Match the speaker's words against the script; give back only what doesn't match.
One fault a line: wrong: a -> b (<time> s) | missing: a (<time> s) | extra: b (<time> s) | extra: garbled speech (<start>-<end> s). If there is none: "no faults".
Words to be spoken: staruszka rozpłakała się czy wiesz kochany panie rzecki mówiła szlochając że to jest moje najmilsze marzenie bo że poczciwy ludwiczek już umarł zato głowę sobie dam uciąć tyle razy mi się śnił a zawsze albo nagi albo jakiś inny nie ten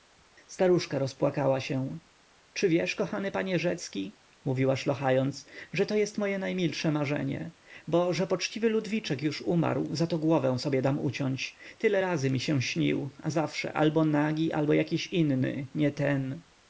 no faults